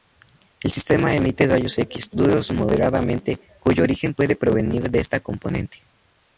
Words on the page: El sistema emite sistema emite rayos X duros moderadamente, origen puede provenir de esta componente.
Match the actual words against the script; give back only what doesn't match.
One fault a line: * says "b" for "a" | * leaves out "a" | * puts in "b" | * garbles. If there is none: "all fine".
* leaves out "sistema emite"
* puts in "cuyo"